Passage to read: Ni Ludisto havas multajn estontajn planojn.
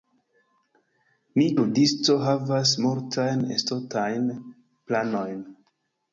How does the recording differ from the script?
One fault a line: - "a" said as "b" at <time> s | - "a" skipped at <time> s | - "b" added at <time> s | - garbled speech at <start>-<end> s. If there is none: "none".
none